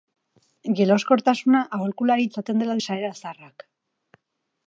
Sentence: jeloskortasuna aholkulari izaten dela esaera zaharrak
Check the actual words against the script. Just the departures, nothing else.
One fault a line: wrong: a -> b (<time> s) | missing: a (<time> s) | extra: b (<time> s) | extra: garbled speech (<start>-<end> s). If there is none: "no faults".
no faults